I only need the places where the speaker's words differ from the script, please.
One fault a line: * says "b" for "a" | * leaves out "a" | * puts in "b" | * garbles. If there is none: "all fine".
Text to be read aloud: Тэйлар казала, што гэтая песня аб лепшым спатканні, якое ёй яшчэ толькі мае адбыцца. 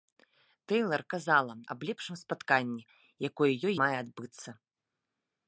* leaves out "што гэтая песня"
* leaves out "яшчэ толькі"